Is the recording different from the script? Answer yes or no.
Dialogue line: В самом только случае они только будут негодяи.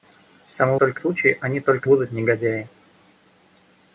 no